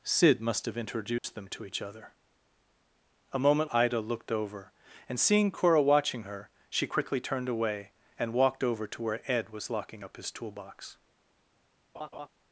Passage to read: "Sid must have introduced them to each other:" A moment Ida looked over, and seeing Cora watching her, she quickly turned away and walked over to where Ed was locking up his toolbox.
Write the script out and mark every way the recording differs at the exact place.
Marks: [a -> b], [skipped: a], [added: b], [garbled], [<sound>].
"Sid must have introduced [dropout] them to each other:" A moment Ida looked over, and seeing Cora watching her, she quickly turned away and walked over to where Ed was locking up his toolbox. [laugh]